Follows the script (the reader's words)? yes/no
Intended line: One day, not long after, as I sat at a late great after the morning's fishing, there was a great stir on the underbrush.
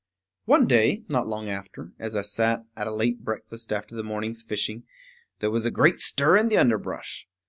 no